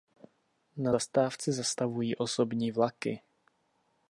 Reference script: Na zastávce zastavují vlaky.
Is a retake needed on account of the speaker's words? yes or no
yes